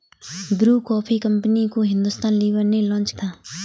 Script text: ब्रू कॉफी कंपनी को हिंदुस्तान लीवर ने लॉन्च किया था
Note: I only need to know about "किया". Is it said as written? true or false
false